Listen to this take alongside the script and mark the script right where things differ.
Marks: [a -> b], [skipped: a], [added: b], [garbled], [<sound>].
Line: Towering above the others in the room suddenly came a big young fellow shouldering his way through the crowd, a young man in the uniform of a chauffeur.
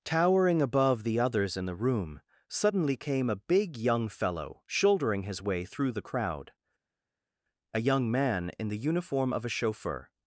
Towering above the others in the room suddenly came a big young fellow shouldering his way through the crowd, a young man in the uniform of a chauffeur.